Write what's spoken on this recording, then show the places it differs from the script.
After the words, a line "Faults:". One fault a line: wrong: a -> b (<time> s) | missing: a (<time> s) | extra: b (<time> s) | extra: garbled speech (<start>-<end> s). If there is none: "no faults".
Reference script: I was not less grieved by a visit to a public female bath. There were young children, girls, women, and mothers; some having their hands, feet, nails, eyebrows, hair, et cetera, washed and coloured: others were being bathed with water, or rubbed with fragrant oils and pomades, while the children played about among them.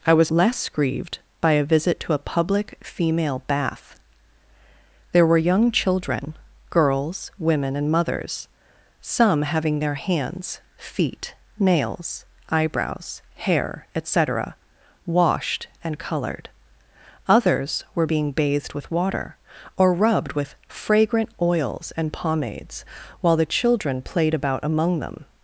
I was less grieved by a visit to a public female bath. There were young children, girls, women, and mothers; some having their hands, feet, nails, eyebrows, hair, et cetera, washed and coloured: others were being bathed with water, or rubbed with fragrant oils and pomades, while the children played about among them.
Faults:
missing: not (0.3 s)